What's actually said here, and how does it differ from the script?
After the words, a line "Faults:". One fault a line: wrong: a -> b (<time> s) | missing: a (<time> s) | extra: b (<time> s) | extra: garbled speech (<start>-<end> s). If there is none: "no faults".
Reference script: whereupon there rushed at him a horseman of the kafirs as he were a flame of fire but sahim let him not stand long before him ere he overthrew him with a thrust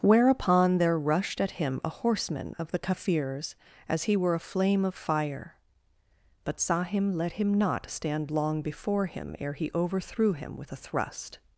whereupon there rushed at him a horseman of the kafirs as he were a flame of fire but sahim let him not stand long before him ere he overthrew him with a thrust
Faults:
no faults